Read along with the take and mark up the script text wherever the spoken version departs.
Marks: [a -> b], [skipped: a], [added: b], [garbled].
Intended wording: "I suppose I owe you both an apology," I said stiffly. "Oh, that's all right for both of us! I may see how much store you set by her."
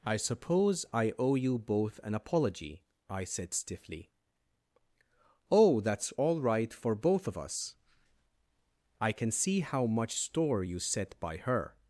"I suppose I owe you both an apology," I said stiffly. "Oh, that's all right for both of us! I [may -> can] see how much store you set by her."